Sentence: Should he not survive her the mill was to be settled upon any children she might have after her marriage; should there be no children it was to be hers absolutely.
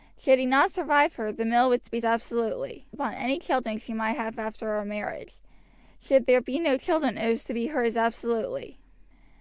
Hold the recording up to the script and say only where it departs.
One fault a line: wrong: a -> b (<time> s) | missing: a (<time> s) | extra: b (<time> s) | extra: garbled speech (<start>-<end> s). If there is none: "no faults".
wrong: settled -> absolutely (2.0 s)